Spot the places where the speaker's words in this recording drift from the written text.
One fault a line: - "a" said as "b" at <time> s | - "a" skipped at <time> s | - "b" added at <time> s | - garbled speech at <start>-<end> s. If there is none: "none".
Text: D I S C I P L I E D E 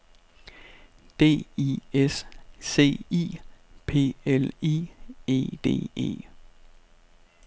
none